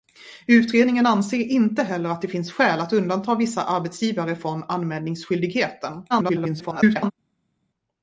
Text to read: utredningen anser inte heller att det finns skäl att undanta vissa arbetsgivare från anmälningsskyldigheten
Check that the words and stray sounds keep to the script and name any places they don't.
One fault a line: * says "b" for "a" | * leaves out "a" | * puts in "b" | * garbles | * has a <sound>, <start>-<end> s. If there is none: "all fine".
* garbles